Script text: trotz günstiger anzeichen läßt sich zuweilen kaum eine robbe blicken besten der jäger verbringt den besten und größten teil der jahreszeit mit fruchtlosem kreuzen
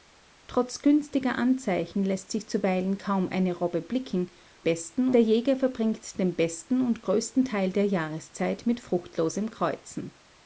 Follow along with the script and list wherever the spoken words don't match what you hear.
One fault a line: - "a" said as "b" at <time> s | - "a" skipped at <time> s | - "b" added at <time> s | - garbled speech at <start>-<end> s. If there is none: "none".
none